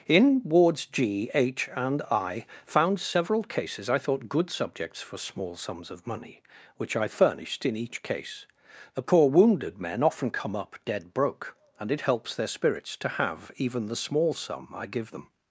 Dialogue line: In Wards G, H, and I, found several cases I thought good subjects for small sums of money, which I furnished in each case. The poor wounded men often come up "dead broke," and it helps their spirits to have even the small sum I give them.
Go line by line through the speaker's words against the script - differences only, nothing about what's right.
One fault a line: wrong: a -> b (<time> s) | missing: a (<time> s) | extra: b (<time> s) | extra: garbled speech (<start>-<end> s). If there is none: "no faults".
no faults